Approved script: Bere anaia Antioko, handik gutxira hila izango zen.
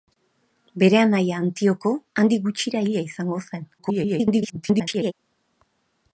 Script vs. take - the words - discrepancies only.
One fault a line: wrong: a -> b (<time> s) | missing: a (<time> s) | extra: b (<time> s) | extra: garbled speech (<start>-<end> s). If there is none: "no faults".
extra: garbled speech (3.8-5.1 s)